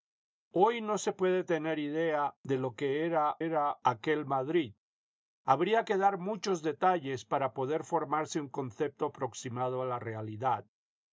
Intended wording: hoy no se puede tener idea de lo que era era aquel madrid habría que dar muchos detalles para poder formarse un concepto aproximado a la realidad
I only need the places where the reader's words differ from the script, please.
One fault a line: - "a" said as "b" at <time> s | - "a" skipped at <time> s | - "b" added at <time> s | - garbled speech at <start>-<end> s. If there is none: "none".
none